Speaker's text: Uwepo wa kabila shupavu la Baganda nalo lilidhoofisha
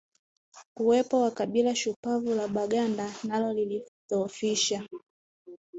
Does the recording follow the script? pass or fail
pass